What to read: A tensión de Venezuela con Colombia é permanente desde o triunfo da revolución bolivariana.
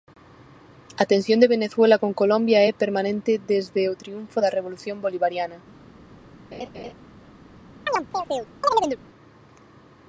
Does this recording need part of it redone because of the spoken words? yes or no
no